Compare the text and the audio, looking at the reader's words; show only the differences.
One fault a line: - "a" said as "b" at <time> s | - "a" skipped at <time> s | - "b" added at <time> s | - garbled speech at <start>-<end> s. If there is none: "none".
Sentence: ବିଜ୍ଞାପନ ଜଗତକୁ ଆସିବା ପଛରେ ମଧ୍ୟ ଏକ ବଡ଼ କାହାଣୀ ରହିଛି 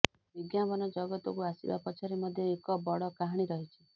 none